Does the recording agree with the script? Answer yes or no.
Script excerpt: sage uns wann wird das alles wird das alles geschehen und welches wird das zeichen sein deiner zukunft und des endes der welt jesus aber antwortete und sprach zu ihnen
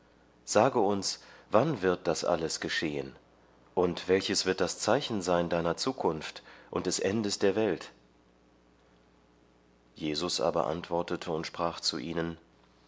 no